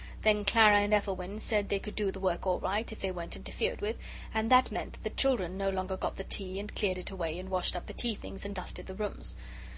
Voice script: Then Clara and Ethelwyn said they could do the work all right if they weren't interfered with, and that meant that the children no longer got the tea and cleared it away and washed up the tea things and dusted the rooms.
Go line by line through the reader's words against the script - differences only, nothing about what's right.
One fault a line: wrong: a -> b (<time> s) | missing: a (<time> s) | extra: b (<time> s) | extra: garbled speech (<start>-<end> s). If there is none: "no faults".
no faults